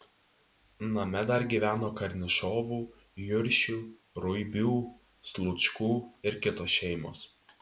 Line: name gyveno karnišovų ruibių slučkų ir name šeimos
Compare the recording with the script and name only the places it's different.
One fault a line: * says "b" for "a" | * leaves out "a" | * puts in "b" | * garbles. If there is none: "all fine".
* puts in "dar"
* puts in "juršių"
* says "kitos" for "name"